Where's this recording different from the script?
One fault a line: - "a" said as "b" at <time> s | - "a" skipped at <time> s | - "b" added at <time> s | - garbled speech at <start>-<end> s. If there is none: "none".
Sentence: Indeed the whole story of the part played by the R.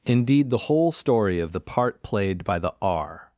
none